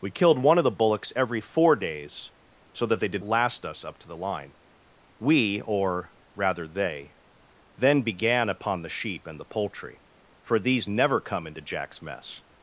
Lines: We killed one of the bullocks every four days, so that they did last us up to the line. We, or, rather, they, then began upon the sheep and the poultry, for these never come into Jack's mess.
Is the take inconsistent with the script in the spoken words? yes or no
no